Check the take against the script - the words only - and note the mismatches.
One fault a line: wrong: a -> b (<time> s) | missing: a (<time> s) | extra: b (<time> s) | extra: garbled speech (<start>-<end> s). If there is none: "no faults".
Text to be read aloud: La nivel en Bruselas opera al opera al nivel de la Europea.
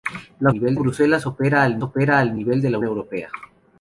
no faults